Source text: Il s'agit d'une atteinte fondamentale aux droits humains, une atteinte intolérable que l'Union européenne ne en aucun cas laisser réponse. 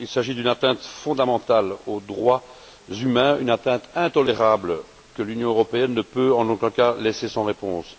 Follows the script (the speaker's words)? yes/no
no